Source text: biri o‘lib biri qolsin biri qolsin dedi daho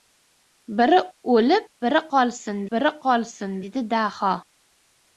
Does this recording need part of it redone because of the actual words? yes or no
no